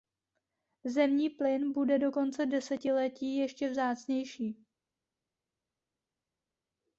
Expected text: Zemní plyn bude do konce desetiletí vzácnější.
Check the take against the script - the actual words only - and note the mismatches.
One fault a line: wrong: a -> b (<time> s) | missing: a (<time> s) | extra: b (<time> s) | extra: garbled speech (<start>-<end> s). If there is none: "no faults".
extra: ještě (3.4 s)